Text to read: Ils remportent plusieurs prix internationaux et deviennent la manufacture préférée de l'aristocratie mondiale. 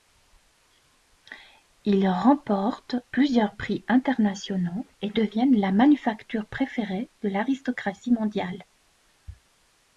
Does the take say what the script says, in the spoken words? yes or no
yes